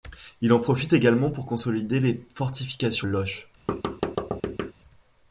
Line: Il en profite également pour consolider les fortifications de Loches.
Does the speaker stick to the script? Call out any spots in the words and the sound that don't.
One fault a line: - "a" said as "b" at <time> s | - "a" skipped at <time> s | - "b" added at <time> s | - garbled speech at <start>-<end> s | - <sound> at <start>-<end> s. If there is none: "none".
- "de" skipped at 3.1 s
- thud at 3.7-4.7 s